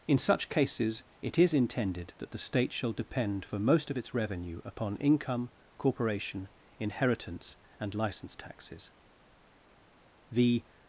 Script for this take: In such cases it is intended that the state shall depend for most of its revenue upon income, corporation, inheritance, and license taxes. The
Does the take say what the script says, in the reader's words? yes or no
yes